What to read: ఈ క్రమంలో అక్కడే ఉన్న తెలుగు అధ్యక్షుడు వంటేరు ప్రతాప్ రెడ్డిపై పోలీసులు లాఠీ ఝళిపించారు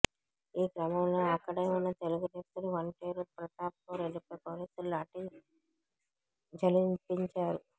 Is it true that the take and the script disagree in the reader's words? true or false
false